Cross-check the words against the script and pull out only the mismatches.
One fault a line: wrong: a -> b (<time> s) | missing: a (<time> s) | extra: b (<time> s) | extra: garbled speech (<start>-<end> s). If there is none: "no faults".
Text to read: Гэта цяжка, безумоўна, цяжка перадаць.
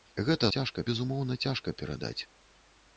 no faults